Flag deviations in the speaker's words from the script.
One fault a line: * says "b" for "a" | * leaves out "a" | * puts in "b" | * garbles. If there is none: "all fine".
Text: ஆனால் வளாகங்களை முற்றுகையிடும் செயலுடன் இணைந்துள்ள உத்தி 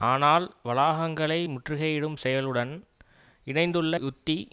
all fine